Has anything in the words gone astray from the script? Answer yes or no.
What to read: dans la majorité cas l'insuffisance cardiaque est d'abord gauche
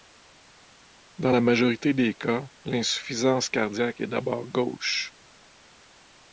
yes